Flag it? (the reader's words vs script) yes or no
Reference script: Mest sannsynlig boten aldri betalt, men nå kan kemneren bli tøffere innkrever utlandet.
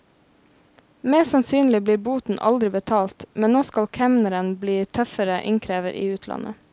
yes